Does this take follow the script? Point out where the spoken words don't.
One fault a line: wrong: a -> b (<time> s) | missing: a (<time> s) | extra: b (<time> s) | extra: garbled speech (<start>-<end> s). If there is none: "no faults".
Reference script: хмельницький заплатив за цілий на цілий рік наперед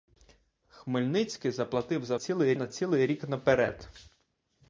no faults